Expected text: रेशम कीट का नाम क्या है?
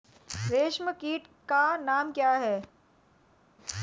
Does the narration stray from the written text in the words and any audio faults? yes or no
no